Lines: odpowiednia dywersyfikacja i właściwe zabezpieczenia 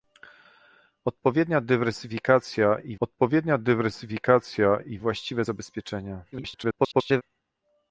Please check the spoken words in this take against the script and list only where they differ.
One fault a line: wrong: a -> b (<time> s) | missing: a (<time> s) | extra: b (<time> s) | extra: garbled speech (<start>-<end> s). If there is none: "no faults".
extra: odpowiednia dywersyfikacja i (3.0 s)
extra: garbled speech (6.3-7.2 s)